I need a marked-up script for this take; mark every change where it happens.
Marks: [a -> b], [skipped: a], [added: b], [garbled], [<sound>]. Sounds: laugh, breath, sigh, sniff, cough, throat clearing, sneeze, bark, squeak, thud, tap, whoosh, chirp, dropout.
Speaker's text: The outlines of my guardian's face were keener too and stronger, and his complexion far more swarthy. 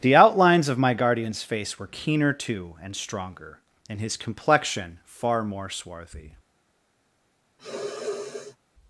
The outlines of my guardian's face were keener too and stronger, and his complexion far more swarthy. [sniff]